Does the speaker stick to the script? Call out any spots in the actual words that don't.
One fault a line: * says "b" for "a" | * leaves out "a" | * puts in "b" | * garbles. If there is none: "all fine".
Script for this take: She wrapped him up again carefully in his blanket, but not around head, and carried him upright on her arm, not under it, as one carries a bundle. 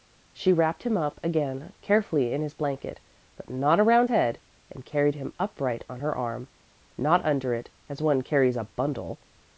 all fine